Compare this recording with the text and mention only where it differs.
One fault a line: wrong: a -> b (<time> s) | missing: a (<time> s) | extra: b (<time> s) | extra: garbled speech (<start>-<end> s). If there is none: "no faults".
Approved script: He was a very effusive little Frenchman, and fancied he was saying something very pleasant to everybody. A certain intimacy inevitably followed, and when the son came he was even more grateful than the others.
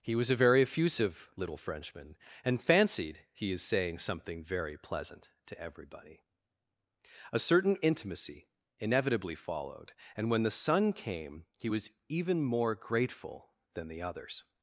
wrong: was -> is (3.5 s)